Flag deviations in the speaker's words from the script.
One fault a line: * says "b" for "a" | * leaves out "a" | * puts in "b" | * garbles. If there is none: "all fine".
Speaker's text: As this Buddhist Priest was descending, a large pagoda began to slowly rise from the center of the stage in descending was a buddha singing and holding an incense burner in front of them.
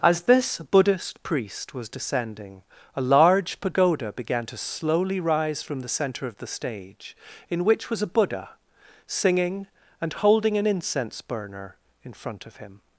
* says "which" for "descending"
* says "him" for "them"